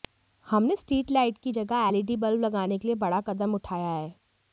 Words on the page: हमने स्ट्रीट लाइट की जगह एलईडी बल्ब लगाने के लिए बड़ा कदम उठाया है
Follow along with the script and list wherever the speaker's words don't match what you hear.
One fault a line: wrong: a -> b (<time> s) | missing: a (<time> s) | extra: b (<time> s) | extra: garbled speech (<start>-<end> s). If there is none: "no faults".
no faults